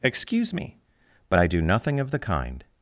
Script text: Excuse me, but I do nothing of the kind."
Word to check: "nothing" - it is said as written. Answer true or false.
true